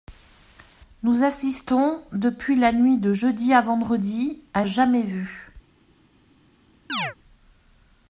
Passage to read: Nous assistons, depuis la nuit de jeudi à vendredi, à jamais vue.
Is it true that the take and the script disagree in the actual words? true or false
false